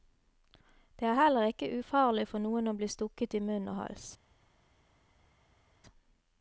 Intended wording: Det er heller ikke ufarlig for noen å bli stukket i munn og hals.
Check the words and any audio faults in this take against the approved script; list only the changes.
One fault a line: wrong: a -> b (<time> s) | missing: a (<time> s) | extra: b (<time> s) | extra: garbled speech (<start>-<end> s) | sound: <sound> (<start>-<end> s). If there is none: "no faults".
no faults